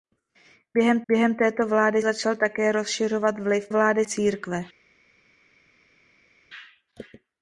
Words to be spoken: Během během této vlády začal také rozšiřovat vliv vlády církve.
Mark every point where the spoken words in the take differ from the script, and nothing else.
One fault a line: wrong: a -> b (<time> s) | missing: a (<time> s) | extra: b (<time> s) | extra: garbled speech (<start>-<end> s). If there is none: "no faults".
no faults